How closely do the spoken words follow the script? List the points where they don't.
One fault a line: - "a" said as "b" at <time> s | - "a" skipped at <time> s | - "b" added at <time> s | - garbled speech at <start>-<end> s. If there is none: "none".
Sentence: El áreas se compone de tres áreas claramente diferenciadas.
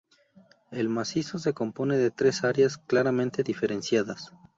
- "áreas" said as "macizo" at 0.9 s